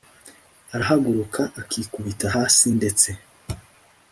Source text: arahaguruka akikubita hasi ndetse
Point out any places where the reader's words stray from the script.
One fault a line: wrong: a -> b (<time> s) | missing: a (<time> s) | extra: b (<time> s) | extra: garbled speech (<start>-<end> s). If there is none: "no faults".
no faults